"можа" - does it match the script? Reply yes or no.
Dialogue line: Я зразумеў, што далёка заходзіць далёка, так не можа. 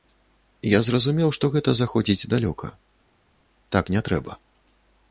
no